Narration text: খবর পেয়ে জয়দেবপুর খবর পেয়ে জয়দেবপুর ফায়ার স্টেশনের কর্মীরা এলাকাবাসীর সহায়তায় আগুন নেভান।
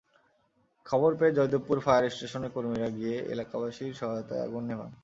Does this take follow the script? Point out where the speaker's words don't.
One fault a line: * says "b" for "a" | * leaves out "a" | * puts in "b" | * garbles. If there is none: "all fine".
* leaves out "খবর পেয়ে জয়দেবপুর"
* puts in "গিয়ে"